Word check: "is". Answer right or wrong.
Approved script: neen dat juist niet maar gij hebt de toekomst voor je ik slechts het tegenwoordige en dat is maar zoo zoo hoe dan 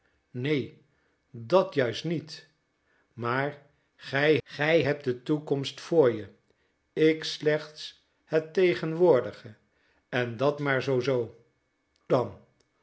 wrong